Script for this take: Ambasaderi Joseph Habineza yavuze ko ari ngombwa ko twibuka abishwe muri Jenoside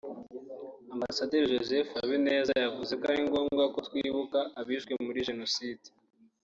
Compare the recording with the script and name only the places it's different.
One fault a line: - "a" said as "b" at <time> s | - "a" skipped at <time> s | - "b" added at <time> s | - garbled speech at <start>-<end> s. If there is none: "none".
none